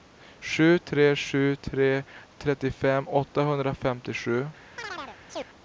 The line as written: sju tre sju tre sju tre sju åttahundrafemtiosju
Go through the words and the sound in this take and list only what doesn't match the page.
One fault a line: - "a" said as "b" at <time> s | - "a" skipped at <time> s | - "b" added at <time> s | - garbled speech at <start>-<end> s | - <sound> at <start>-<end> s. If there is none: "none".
- "sju tre sju" said as "trettiofem" at 2.4 s
- chirp at 4.8-5.5 s